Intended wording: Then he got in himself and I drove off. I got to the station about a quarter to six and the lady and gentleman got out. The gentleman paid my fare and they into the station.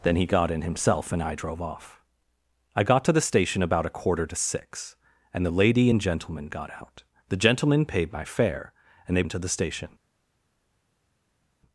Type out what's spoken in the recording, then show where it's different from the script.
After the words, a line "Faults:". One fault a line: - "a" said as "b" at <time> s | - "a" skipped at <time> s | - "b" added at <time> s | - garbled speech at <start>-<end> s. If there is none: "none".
Then he got in himself and I drove off. I got to the station about a quarter to six and the lady and gentleman got out. The gentleman paid my fare and they into the station.
Faults:
none